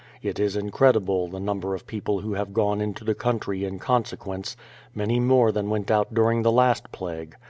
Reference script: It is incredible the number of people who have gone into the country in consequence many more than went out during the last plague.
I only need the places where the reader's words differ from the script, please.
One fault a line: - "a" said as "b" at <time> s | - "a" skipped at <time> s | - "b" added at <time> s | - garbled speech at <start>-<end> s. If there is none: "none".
none